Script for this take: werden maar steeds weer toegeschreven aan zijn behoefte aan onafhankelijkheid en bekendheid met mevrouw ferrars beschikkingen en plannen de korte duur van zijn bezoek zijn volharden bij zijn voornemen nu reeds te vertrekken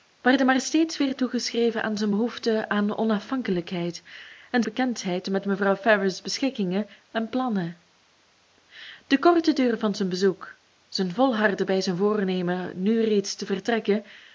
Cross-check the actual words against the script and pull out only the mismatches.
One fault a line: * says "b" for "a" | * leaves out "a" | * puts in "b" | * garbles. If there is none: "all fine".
all fine